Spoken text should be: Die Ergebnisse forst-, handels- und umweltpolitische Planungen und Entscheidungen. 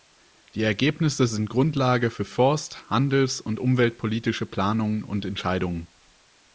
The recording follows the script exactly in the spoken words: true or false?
false